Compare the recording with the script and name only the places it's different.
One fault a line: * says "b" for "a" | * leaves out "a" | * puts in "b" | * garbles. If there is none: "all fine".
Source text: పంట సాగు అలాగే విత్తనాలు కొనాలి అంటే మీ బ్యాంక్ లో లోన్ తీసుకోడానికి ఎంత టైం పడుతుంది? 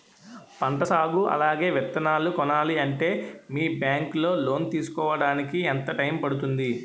all fine